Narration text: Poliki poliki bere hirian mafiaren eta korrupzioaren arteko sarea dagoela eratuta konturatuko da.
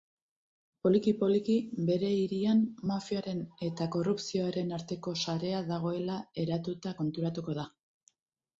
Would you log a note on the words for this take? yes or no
no